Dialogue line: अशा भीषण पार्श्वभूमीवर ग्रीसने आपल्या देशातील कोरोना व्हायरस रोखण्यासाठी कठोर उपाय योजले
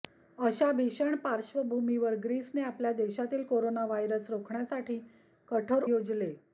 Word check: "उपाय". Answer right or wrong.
wrong